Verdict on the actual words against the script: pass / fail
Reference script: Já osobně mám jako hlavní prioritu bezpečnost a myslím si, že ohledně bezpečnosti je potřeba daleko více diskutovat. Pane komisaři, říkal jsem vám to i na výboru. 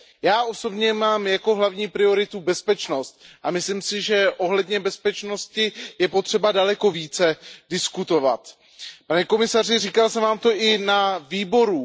pass